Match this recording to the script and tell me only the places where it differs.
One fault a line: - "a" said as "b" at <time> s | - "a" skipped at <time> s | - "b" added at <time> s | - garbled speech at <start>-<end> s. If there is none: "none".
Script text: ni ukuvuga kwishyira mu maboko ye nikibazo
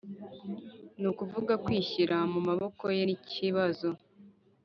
none